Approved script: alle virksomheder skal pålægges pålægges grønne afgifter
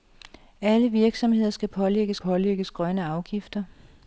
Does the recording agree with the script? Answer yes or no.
yes